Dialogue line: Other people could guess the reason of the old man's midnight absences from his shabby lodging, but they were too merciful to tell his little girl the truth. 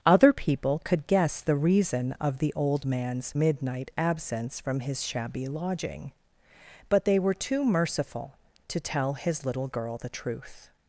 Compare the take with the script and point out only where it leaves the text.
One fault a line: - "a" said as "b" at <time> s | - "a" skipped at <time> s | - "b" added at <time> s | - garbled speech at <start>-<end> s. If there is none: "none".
- "absences" said as "absence" at 4.0 s